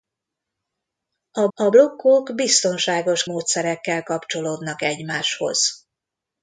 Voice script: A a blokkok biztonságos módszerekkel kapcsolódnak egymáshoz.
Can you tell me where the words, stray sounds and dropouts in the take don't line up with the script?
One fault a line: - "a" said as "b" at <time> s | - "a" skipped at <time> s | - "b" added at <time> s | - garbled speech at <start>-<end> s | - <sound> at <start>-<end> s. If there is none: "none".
none